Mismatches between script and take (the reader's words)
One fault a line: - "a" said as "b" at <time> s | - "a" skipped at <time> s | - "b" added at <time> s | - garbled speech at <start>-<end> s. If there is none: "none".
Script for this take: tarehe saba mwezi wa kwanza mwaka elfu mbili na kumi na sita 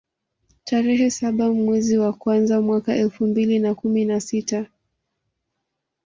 none